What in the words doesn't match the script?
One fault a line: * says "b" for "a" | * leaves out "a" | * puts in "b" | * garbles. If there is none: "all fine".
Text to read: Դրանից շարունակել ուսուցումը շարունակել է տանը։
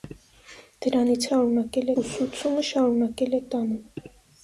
all fine